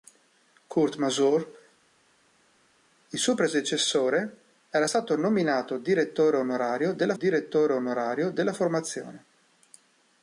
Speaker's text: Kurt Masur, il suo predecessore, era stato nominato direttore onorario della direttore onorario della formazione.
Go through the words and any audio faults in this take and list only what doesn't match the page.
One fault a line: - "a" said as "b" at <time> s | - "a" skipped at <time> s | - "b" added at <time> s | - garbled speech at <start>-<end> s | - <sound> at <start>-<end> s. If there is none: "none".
none